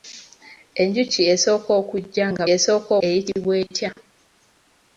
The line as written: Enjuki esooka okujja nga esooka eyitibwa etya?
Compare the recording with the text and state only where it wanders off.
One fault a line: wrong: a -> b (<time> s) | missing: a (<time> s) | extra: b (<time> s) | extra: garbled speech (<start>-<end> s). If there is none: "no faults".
no faults